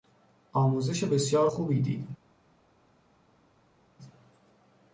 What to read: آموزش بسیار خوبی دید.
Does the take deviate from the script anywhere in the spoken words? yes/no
no